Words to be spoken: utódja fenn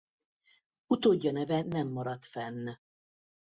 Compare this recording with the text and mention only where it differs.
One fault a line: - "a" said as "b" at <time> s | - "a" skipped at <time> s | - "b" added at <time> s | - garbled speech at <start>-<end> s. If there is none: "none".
- "neve nem maradt" added at 1.3 s